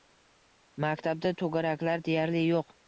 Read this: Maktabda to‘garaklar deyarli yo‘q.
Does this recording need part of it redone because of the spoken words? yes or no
no